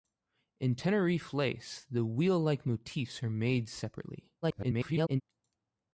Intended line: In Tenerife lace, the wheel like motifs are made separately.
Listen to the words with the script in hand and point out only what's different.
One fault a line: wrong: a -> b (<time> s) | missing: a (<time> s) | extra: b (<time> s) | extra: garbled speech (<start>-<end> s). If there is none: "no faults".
extra: garbled speech (4.4-5.2 s)